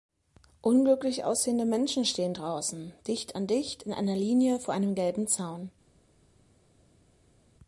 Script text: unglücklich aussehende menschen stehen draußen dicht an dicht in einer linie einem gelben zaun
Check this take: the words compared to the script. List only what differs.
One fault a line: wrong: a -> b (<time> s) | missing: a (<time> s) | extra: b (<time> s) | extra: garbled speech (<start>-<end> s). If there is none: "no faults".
extra: vor (4.6 s)